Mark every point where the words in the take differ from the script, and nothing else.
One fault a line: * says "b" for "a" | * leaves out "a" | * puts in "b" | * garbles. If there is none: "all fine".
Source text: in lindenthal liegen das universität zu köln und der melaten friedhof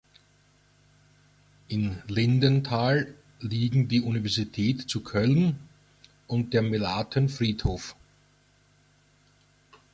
* says "die" for "das"